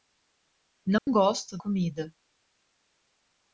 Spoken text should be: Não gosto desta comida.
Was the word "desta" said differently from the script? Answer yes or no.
yes